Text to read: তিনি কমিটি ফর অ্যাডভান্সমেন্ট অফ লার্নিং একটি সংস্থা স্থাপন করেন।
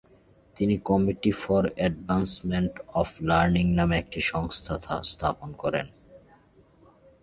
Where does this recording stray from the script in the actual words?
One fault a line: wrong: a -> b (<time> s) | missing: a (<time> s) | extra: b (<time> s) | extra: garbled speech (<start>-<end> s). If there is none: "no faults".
extra: নামে (3.7 s)